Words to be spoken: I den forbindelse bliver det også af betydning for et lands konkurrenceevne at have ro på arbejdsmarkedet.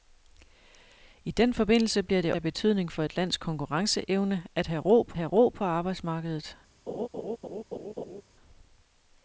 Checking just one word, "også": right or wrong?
wrong